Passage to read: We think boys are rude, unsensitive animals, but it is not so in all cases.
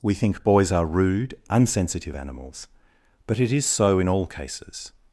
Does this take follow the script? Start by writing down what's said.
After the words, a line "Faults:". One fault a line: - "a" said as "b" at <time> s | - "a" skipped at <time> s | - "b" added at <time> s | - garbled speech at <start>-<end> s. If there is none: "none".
We think boys are rude, unsensitive animals, but it is so in all cases.
Faults:
- "not" skipped at 3.6 s